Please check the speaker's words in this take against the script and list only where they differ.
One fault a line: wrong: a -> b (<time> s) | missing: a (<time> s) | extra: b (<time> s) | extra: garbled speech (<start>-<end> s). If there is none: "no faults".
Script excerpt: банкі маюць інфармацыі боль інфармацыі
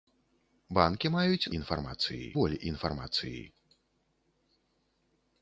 no faults